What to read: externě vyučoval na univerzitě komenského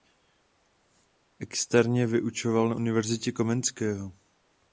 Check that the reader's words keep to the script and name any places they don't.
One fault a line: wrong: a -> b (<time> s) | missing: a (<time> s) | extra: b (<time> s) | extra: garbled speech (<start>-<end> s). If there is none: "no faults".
no faults